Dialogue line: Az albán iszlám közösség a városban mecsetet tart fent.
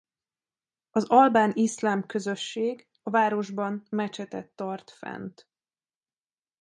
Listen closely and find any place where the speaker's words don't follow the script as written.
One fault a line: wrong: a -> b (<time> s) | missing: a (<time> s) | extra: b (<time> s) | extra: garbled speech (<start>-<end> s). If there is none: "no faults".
no faults